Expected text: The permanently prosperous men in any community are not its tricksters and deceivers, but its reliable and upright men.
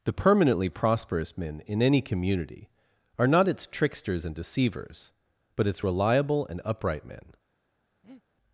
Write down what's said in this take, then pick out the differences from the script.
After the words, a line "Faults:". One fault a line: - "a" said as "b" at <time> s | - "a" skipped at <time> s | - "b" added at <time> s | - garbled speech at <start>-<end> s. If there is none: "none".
The permanently prosperous men in any community are not its tricksters and deceivers, but its reliable and upright men.
Faults:
none